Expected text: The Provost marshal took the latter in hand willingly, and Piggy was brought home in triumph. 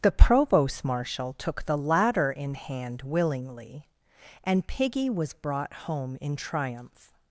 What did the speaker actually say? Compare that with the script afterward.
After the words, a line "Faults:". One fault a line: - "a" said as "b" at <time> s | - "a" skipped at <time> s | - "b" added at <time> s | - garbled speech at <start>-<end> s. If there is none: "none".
The Provost marshal took the latter in hand willingly, and Piggy was brought home in triumph.
Faults:
none